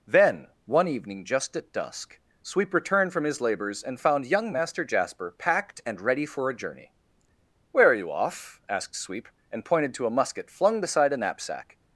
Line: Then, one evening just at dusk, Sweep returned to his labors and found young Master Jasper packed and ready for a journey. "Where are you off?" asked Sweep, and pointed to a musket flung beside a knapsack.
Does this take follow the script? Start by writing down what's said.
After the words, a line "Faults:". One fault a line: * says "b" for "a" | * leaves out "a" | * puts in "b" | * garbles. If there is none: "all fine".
Then, one evening just at dusk, Sweep returned from his labors and found young Master Jasper packed and ready for a journey. "Where are you off?" asked Sweep, and pointed to a musket flung beside a knapsack.
Faults:
* says "from" for "to"